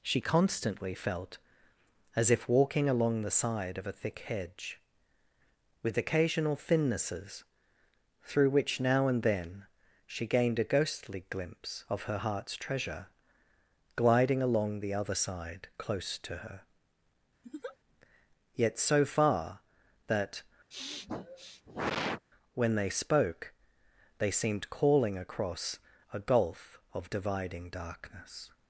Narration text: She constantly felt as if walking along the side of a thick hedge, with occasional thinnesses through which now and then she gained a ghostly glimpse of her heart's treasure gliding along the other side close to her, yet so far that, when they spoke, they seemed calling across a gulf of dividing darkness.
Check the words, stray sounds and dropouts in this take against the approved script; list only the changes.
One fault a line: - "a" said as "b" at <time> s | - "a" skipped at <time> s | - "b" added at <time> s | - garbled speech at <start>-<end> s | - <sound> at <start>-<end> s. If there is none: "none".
- laugh at 17.4-17.8 s
- sniff at 20.7-22.3 s